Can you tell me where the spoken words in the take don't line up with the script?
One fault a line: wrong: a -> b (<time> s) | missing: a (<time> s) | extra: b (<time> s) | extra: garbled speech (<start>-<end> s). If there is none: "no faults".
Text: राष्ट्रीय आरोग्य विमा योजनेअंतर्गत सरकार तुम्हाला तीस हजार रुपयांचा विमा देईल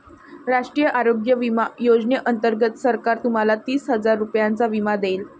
no faults